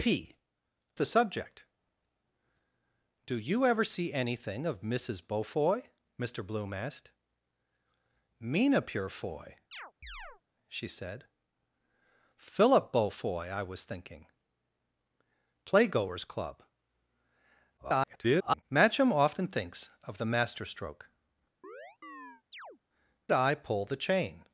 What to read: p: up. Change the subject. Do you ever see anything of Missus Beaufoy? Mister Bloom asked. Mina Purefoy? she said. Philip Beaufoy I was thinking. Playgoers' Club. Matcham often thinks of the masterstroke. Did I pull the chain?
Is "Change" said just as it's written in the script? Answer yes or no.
no